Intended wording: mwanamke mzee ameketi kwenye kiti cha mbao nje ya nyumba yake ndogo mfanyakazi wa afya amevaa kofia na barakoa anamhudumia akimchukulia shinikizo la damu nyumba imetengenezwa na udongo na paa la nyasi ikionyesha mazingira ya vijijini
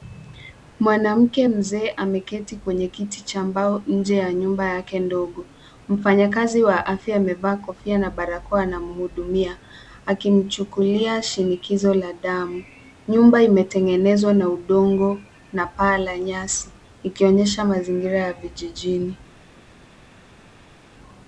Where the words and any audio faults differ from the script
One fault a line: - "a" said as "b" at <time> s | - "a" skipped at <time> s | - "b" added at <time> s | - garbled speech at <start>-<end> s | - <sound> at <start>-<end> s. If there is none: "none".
none